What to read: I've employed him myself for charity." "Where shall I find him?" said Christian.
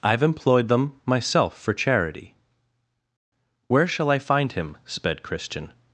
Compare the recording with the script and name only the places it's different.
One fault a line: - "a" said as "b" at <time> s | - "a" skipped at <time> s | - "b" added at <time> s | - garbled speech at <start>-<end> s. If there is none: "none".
- "him" said as "them" at 0.7 s
- "said" said as "sped" at 4.8 s